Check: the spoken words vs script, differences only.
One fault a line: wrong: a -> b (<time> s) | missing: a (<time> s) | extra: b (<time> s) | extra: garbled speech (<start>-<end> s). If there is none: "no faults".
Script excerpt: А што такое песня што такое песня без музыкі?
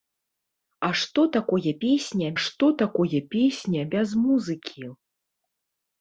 no faults